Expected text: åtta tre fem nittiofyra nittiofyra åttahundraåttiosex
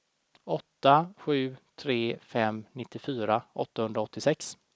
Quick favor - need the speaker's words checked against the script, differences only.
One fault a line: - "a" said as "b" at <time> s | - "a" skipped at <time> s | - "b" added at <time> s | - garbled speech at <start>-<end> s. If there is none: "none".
- "sju" added at 1.2 s
- "nittiofyra" skipped at 3.4 s